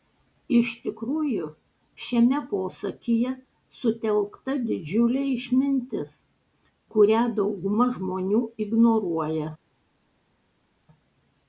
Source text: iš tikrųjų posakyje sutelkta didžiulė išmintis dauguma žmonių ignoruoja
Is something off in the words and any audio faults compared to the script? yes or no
yes